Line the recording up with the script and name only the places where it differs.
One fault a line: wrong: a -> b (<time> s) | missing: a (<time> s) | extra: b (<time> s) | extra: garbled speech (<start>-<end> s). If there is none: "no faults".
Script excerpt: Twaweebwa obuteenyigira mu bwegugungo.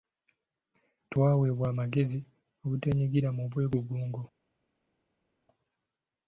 extra: amagezi (1.7 s)